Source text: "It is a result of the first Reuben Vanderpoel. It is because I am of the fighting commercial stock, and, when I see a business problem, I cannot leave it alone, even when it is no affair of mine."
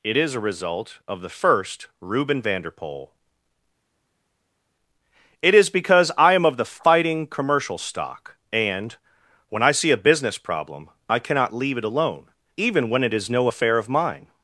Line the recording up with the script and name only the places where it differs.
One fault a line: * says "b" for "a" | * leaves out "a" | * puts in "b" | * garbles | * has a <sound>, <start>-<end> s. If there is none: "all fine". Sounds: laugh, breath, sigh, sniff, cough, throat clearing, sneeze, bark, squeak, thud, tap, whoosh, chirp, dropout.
all fine